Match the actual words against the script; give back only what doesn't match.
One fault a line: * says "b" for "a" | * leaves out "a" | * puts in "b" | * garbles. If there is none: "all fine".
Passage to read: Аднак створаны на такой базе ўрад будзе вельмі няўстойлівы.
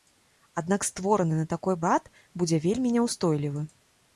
* leaves out "базе"